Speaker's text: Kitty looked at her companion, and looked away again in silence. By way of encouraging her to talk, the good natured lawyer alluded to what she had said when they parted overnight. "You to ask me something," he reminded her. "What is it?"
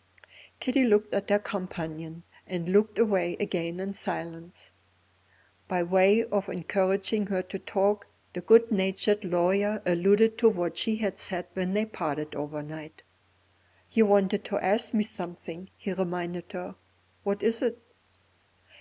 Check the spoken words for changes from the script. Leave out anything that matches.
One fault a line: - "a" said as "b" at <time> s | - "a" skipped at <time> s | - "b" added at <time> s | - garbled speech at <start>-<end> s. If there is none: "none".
- "wanted" added at 14.0 s